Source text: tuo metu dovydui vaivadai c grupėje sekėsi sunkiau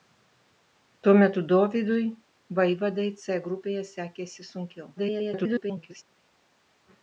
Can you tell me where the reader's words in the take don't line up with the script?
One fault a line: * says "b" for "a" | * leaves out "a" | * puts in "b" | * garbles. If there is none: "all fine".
* garbles